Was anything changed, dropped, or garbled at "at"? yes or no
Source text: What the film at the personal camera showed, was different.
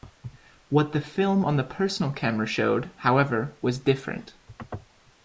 yes